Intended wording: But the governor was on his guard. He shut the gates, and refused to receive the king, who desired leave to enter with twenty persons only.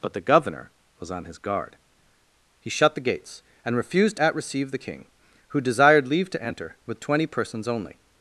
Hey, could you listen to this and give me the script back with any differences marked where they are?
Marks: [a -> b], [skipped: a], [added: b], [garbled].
But the governor was on his guard. He shut the gates, and refused [to -> at] receive the king, who desired leave to enter with twenty persons only.